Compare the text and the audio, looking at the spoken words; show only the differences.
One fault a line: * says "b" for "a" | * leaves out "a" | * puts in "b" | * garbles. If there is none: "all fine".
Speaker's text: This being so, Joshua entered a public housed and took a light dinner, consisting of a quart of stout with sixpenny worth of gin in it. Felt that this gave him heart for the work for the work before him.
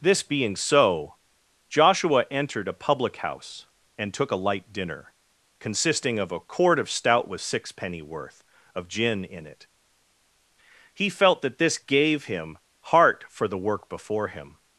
* says "house" for "housed"
* puts in "He"
* leaves out "for the work"